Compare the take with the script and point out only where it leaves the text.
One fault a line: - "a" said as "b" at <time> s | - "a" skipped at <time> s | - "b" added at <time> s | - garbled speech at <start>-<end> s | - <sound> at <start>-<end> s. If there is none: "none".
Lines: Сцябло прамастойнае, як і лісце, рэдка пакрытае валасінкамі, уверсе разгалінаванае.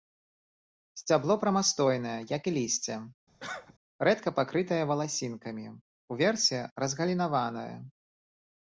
- cough at 3.4-3.7 s